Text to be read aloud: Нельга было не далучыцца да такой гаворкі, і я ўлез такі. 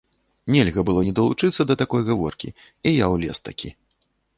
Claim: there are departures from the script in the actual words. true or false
false